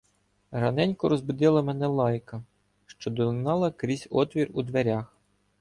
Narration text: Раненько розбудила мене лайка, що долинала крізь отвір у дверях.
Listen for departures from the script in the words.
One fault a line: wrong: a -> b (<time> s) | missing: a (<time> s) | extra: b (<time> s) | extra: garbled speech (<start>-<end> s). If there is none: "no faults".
no faults